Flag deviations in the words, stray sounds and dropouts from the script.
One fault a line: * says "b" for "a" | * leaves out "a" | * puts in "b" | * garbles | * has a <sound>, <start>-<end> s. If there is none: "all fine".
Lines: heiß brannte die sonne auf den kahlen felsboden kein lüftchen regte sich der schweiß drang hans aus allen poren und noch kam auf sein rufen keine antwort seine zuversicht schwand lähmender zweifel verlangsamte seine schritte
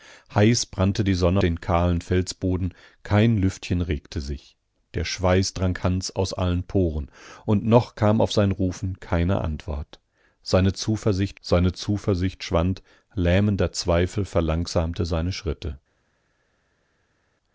* leaves out "auf"
* puts in "seine zuversicht"